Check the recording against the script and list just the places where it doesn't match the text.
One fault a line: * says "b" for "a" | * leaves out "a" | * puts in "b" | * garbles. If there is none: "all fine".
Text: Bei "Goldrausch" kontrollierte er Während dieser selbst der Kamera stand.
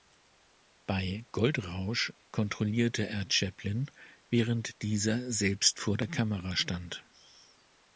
* puts in "Chaplin"
* puts in "vor"